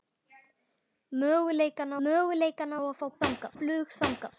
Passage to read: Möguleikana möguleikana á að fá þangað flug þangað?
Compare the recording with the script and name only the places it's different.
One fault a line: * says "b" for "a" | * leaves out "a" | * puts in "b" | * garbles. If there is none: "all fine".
all fine